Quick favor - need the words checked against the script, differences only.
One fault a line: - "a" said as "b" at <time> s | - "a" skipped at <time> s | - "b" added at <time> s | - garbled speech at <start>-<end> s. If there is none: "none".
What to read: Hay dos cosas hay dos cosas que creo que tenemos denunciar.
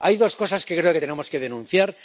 - "hay dos cosas" skipped at 0.7 s
- "que" added at 1.3 s